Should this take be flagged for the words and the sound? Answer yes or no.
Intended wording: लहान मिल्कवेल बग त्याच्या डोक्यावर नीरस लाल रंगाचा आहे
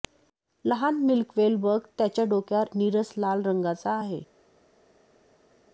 no